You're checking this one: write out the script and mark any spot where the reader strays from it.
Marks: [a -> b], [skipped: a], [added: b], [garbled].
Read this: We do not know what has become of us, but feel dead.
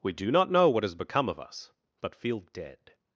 We do not know what has become of us, but feel dead.